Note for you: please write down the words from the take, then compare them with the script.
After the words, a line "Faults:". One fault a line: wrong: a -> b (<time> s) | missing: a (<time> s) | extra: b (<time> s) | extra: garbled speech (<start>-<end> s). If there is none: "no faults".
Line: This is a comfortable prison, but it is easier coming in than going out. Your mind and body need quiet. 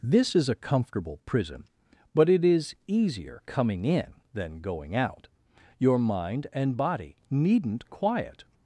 This is a comfortable prison, but it is easier coming in than going out. Your mind and body needn't quiet.
Faults:
wrong: need -> needn't (7.3 s)